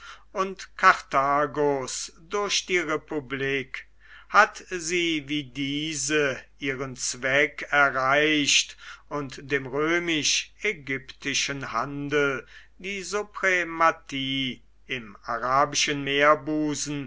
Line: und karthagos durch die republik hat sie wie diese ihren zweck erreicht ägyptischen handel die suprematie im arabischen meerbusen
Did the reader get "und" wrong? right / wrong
right